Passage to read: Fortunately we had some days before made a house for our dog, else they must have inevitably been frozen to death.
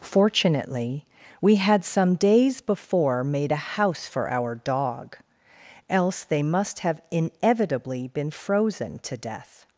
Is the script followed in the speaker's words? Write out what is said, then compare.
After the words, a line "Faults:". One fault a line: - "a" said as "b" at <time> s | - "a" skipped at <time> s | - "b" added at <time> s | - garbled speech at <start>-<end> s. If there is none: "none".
Fortunately we had some days before made a house for our dog, else they must have inevitably been frozen to death.
Faults:
none